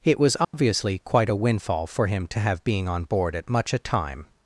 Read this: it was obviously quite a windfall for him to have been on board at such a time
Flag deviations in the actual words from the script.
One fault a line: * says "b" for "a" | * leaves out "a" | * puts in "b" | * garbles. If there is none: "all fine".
* says "being" for "been"
* says "much" for "such"